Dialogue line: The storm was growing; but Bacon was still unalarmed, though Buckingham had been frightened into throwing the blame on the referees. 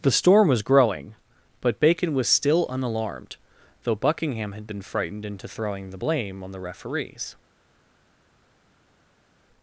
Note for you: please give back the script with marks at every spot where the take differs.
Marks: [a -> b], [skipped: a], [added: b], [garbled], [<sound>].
The storm was growing; but Bacon was still unalarmed, though Buckingham had been frightened into throwing the blame on the referees.